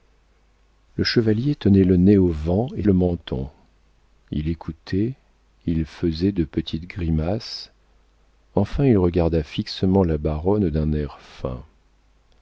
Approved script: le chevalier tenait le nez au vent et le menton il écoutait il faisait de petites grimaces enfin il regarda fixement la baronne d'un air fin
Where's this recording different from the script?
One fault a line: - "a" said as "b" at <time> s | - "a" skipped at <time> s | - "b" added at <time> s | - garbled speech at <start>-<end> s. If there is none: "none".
none